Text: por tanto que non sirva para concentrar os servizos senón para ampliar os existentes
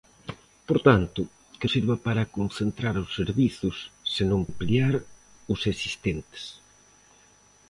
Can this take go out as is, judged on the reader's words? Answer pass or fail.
fail